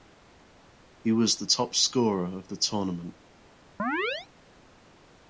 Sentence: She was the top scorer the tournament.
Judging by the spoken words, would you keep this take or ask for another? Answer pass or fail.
fail